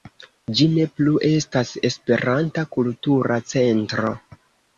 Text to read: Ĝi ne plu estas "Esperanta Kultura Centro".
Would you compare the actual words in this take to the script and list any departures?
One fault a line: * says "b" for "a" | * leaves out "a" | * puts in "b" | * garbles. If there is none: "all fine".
all fine